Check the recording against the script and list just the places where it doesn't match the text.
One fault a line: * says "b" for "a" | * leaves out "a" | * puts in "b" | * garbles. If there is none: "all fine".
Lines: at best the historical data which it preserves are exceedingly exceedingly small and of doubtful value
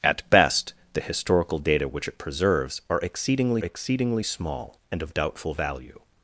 all fine